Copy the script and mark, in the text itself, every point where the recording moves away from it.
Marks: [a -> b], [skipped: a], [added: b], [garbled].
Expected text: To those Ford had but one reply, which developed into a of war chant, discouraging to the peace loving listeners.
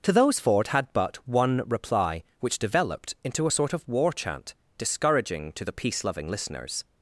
To those Ford had but one reply, which developed into a [added: sort] of war chant, discouraging to the peace loving listeners.